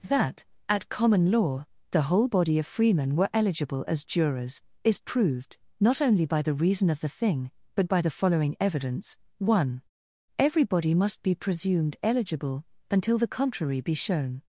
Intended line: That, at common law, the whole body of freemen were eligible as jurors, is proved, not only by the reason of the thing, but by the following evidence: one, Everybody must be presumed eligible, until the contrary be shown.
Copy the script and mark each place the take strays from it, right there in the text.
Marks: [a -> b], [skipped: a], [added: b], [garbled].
That, at common law, the whole body of freemen were eligible as jurors, is proved, not only by the reason of the thing, but by the following evidence: one, Everybody must be presumed eligible, until the contrary be shown.